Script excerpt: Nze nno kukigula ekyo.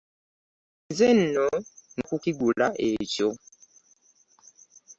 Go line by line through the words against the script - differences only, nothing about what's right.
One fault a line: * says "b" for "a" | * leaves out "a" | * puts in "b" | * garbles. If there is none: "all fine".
all fine